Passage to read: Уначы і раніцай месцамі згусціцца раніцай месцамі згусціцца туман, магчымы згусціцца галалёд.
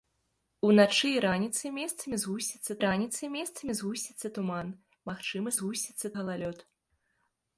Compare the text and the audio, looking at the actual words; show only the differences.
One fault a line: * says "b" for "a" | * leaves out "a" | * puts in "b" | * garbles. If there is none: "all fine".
all fine